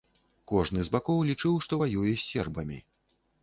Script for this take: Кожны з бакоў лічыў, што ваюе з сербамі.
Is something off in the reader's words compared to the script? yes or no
no